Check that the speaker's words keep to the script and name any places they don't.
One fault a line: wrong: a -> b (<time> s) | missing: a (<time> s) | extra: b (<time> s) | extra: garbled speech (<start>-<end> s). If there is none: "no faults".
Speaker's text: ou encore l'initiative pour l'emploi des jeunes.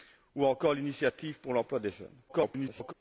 extra: garbled speech (2.3-2.9 s)